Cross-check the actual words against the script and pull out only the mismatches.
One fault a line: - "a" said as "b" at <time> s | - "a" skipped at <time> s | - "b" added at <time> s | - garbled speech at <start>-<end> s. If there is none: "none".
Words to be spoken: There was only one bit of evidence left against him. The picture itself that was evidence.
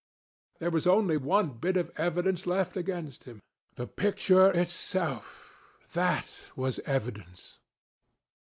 none